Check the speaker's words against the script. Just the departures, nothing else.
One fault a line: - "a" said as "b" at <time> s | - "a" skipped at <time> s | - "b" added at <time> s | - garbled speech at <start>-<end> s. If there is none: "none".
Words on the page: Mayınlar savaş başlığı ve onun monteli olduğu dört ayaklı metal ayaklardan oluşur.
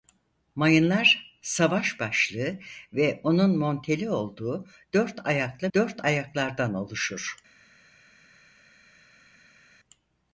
- "metal" said as "dört" at 5.7 s